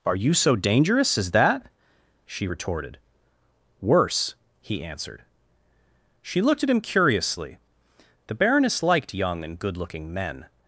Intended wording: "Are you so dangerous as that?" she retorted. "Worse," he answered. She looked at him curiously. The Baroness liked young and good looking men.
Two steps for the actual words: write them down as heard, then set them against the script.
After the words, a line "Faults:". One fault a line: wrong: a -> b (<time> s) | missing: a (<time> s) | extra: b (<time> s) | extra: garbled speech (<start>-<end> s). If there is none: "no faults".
"Are you so dangerous as that?" she retorted. "Worse," he answered. She looked at him curiously. The Baroness liked young and good looking men.
Faults:
no faults